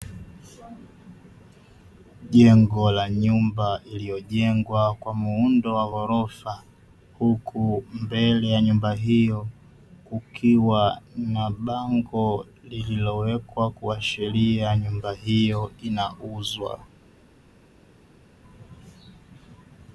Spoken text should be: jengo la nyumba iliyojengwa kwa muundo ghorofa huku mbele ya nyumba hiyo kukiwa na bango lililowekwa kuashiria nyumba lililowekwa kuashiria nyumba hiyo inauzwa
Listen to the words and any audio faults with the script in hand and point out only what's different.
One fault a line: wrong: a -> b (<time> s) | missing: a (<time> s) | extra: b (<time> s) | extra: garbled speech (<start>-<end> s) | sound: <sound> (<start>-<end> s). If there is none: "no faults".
extra: wa (5.8 s)
missing: lililowekwa kuashiria nyumba (15.1 s)